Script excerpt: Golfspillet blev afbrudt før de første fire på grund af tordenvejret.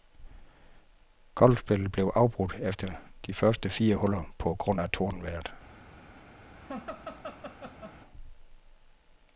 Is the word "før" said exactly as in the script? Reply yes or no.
no